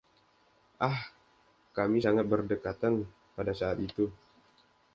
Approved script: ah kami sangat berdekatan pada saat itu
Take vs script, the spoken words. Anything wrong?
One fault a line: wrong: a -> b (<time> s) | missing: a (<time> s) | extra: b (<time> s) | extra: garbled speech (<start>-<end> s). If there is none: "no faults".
no faults